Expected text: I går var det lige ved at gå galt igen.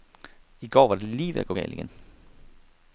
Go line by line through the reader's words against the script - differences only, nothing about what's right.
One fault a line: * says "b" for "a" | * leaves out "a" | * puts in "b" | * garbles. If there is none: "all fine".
all fine